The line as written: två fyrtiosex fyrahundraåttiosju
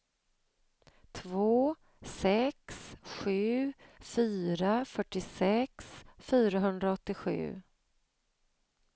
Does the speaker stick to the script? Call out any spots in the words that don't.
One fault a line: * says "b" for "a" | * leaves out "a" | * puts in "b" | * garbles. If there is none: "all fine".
* puts in "sex sju fyra"